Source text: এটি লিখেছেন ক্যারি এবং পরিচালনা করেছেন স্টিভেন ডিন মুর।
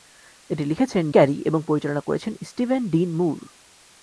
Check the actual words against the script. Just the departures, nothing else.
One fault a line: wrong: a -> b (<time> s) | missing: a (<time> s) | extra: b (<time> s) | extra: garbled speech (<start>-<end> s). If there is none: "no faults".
no faults